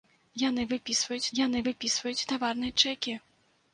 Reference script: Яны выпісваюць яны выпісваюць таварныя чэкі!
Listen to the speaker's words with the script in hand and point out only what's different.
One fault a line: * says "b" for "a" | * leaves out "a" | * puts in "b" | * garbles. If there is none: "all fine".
all fine